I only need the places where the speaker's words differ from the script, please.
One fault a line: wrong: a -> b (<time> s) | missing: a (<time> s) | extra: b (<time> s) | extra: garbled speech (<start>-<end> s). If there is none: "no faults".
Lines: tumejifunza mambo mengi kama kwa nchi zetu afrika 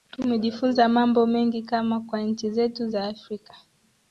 extra: za (2.9 s)